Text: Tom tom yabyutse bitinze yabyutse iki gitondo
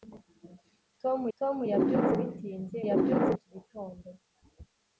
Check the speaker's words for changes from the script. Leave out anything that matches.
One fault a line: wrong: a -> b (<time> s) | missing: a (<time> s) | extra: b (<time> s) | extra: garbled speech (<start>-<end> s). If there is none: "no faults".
no faults